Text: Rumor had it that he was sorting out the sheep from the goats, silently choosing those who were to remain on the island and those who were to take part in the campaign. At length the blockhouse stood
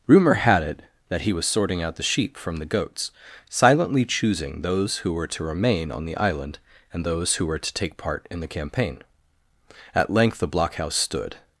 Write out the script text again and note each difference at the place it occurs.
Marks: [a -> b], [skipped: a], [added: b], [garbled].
Rumor had it that he was sorting out the sheep from the goats, silently choosing those who were to remain on the island and those who were to take part in the campaign. At length the blockhouse stood